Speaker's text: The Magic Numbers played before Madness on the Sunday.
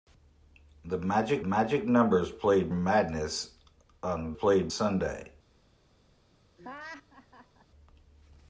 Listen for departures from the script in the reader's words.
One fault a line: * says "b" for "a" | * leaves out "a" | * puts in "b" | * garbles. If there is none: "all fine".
* puts in "Magic"
* leaves out "before"
* says "played" for "the"